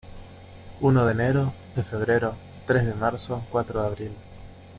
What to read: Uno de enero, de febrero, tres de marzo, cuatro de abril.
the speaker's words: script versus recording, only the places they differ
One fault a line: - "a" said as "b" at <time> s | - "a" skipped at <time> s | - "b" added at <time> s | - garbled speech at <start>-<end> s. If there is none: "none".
none